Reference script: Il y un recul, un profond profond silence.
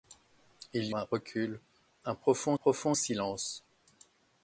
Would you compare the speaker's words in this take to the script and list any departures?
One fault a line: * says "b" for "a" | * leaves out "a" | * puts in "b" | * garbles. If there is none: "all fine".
all fine